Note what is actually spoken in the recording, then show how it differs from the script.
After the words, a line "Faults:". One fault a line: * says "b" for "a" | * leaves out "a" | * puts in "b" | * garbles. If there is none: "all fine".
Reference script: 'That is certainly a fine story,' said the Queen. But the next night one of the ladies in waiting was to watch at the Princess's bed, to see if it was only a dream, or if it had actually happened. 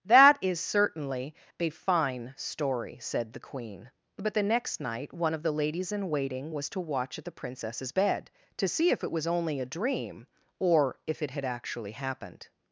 'That is certainly a fine story,' said the Queen. But the next night one of the ladies in waiting was to watch at the Princess's bed, to see if it was only a dream, or if it had actually happened.
Faults:
all fine